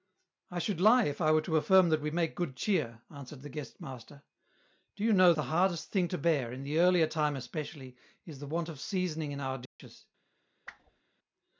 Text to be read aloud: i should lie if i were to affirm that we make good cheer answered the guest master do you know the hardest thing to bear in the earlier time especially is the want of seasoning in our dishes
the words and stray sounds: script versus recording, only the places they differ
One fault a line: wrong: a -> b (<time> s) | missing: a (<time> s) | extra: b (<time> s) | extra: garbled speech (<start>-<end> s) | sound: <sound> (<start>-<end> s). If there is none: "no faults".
sound: dropout (9.7-9.8 s)
sound: whoosh (10.7-11.0 s)